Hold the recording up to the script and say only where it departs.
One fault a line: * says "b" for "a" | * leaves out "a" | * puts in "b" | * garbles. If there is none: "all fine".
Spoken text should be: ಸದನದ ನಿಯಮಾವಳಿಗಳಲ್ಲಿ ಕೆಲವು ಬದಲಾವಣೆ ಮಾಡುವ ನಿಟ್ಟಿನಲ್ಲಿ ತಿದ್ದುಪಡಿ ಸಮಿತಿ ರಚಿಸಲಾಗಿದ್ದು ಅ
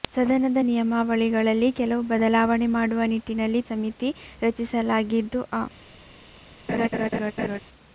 * leaves out "ತಿದ್ದುಪಡಿ"